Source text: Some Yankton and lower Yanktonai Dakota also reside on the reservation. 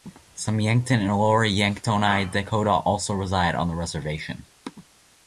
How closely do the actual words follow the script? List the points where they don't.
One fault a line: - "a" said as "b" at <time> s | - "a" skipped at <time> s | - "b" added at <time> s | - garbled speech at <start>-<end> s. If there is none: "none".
none